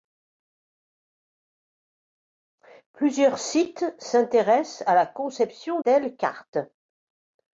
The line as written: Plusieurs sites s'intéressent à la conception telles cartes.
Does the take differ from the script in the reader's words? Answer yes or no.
no